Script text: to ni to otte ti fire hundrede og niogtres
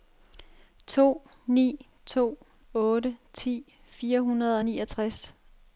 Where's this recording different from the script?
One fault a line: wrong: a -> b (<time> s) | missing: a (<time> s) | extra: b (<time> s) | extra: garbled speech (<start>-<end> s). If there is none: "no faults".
no faults